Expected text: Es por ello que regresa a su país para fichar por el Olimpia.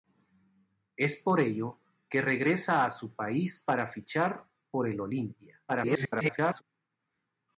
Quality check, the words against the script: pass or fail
fail